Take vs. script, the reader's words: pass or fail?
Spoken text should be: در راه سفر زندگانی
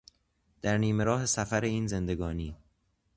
fail